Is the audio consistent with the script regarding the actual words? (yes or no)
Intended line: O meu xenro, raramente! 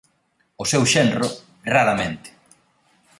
no